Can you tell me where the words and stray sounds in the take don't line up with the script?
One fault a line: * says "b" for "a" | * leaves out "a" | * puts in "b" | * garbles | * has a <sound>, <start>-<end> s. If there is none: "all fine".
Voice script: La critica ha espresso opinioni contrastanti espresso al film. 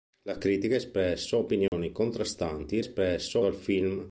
* has a dropout, 1.7-1.7 s